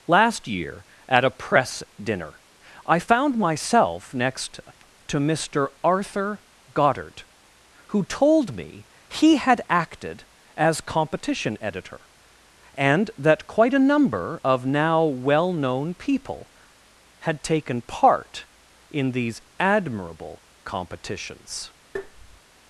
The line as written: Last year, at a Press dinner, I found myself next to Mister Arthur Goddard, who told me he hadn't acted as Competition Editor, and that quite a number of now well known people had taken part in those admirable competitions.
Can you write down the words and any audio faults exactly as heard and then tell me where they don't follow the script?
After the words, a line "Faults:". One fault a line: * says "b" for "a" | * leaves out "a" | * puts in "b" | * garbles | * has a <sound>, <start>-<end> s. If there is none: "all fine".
Last year, at a Press dinner, I found myself next to Mister Arthur Goddard, who told me he had acted as Competition Editor, and that quite a number of now well known people had taken part in these admirable competitions.
Faults:
* says "had" for "hadn't"
* says "these" for "those"
* has a tap, 22.0-22.4 s